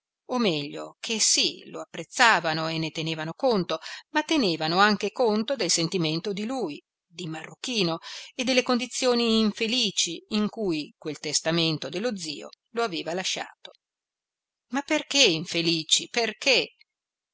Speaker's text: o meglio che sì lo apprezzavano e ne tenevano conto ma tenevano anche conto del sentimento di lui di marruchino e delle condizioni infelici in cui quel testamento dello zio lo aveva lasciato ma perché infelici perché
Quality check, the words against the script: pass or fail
pass